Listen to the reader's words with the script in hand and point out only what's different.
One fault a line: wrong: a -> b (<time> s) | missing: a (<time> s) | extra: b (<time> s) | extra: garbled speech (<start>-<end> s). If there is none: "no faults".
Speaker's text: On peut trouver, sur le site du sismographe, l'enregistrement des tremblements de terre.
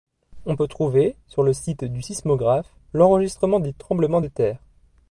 no faults